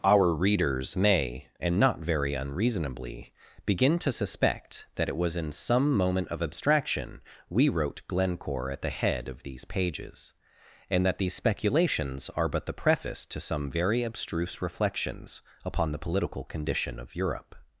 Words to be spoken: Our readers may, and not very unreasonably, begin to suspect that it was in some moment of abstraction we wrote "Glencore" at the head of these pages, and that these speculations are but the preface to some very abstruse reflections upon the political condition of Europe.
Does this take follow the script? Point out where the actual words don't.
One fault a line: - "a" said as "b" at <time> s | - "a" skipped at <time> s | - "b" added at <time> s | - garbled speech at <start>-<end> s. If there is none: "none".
none